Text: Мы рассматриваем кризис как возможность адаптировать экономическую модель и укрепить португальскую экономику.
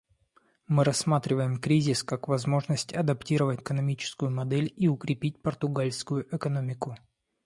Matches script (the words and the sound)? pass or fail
pass